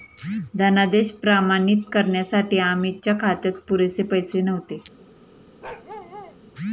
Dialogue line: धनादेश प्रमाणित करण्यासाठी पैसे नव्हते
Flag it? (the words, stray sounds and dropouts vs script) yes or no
yes